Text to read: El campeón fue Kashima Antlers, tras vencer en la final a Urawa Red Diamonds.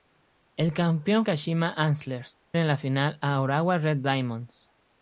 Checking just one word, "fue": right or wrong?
wrong